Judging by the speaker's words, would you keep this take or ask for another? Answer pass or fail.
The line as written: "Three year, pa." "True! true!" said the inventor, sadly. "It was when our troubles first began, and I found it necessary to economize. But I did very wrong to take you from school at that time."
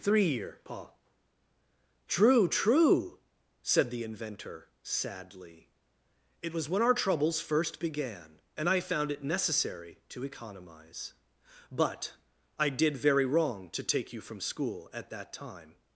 pass